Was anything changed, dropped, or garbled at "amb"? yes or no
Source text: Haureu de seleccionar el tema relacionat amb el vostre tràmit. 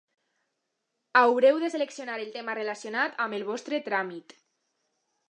no